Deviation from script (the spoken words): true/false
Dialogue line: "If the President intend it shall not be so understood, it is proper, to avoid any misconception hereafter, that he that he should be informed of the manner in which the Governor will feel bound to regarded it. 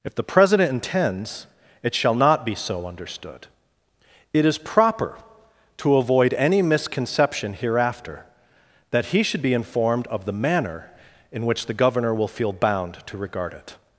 true